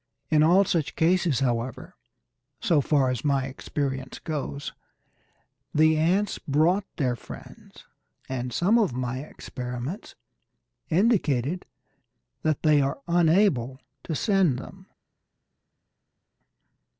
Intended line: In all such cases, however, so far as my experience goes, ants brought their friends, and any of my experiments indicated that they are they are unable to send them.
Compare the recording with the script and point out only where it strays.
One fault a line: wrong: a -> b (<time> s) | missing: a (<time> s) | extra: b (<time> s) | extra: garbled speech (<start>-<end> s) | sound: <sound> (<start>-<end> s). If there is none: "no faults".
extra: the (5.8 s)
wrong: any -> some (8.5 s)
missing: they are (13.0 s)